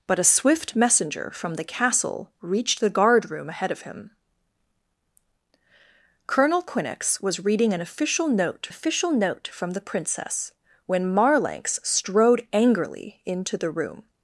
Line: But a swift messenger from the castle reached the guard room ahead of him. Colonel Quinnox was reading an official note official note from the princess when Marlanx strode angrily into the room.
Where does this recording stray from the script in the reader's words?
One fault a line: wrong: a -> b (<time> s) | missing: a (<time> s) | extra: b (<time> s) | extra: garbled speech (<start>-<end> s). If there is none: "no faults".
no faults